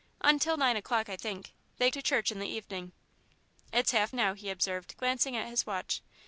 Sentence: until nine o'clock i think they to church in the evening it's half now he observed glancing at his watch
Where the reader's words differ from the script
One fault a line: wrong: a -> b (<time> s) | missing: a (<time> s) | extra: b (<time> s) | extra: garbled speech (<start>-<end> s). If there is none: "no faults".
no faults